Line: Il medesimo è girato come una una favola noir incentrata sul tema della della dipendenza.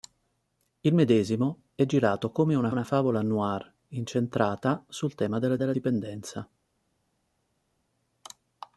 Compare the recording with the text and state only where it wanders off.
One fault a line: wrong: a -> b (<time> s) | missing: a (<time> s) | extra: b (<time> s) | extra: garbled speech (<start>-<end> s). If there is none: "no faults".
no faults